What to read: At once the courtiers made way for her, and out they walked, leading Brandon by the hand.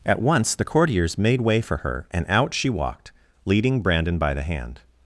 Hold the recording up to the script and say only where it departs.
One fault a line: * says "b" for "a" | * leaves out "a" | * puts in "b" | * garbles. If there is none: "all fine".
* says "she" for "they"